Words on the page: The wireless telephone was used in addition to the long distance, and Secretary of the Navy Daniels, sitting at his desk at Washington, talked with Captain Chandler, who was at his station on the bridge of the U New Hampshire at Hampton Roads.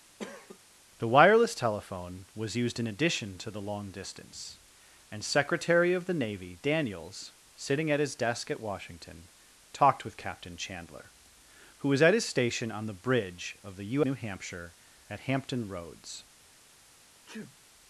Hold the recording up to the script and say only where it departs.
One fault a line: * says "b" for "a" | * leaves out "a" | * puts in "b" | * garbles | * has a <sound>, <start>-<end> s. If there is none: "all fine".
* has a cough, 0.2-0.6 s
* has a sneeze, 17.3-17.6 s